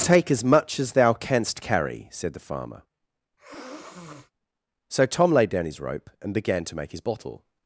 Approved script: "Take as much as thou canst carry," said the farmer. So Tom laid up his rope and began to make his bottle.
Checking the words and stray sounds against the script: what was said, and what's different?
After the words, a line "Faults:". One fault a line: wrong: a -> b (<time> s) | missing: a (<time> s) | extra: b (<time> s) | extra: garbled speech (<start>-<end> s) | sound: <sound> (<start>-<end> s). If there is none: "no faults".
"Take as much as thou canst carry," said the farmer. So Tom laid down his rope and began to make his bottle.
Faults:
sound: sniff (3.4-4.3 s)
wrong: up -> down (5.5 s)